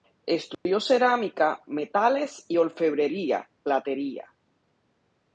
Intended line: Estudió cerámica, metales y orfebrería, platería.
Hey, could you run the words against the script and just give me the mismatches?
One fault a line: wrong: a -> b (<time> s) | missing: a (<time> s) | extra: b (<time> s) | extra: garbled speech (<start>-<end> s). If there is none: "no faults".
no faults